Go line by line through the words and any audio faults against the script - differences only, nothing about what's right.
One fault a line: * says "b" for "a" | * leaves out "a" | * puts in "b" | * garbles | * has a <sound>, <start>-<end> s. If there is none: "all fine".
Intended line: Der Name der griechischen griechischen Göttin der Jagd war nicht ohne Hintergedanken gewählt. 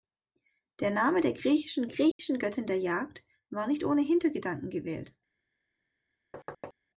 * has a dropout, 2.1-2.2 s
* has a thud, 6.3-6.7 s